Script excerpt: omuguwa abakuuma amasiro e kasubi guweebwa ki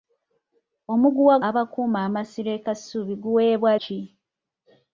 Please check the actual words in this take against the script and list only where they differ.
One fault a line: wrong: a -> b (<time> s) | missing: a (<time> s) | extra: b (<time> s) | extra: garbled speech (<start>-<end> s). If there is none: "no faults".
no faults